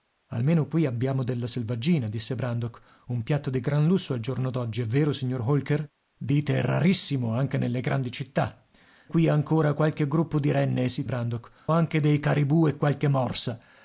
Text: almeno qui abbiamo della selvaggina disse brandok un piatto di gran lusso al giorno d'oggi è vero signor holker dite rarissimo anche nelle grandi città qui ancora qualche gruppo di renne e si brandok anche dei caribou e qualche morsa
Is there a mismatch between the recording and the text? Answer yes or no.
no